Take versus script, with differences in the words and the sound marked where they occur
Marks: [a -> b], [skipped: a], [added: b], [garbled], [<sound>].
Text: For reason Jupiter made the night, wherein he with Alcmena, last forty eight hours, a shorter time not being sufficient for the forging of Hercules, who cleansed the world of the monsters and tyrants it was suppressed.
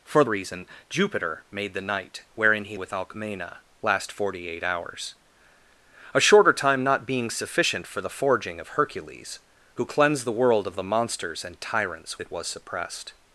For reason Jupiter made the night, wherein he with Alcmena, last forty eight hours, a shorter time not being sufficient for the forging of Hercules, who cleansed the world of the monsters and tyrants it was suppressed.